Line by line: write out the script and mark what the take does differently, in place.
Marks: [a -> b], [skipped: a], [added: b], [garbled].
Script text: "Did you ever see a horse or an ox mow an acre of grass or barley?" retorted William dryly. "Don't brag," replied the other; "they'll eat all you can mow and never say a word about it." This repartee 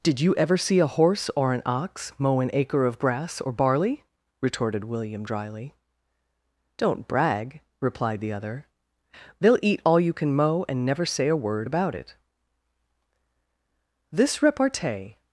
"Did you ever see a horse or an ox mow an acre of grass or barley?" retorted William dryly. "Don't brag," replied the other; "they'll eat all you can mow and never say a word about it." This repartee